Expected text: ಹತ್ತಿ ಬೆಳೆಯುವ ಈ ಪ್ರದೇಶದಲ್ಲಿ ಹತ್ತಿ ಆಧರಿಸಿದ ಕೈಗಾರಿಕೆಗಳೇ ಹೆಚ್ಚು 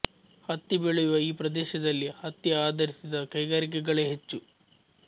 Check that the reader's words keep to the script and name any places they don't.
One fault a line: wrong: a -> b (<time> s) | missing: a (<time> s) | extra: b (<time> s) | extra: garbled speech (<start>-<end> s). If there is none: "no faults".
no faults